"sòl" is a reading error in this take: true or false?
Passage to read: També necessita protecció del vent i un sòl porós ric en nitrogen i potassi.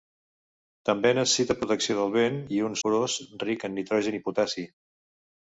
true